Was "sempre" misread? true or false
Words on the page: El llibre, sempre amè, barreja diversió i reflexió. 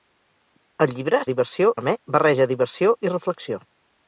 true